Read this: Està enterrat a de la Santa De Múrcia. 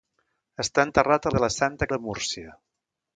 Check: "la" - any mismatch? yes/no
no